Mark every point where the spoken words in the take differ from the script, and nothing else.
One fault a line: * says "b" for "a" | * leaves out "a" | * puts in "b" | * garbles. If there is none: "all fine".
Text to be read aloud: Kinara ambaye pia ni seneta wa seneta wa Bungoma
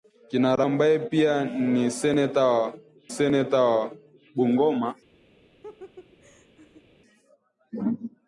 all fine